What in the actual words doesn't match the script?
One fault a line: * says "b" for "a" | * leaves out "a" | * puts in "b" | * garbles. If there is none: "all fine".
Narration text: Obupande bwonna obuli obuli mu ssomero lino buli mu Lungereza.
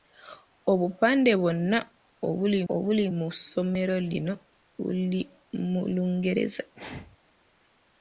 all fine